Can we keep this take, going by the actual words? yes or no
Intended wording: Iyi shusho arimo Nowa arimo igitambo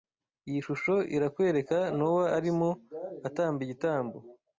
no